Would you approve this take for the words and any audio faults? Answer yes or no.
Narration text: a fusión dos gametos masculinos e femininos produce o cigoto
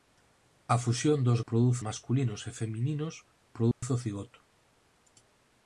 no